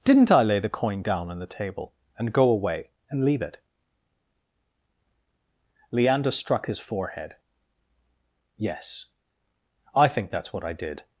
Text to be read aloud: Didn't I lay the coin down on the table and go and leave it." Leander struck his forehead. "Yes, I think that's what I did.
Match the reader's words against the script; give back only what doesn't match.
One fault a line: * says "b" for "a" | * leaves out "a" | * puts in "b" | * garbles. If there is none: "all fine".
* puts in "away"